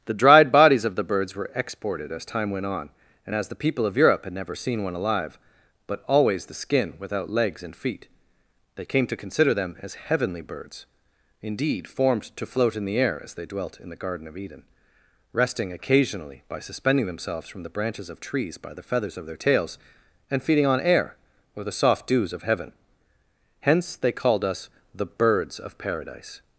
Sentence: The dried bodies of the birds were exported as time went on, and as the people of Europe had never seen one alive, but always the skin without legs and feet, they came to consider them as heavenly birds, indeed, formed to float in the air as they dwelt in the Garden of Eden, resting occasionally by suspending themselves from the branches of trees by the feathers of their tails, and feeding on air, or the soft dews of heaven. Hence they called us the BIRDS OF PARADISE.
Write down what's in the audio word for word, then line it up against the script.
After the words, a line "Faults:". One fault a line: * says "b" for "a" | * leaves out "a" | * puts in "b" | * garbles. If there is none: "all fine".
The dried bodies of the birds were exported as time went on, and as the people of Europe had never seen one alive, but always the skin without legs and feet, they came to consider them as heavenly birds, indeed, formed to float in the air as they dwelt in the Garden of Eden, resting occasionally by suspending themselves from the branches of trees by the feathers of their tails, and feeding on air, or the soft dews of heaven. Hence they called us the BIRDS OF PARADISE.
Faults:
all fine